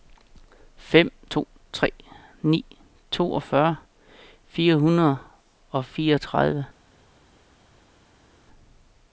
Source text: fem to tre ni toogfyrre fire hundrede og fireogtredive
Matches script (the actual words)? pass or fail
pass